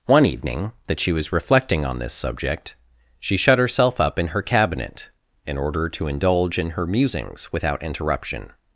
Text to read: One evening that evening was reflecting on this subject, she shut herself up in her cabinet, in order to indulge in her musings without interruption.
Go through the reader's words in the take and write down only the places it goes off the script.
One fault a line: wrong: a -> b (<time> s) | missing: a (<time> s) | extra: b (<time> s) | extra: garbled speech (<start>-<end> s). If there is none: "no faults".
wrong: evening -> she (1.0 s)